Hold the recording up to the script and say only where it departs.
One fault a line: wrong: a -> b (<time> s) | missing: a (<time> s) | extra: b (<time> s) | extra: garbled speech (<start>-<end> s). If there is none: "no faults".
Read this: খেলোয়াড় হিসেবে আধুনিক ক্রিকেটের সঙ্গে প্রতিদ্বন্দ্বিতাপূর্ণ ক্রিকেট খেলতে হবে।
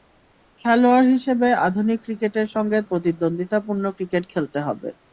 no faults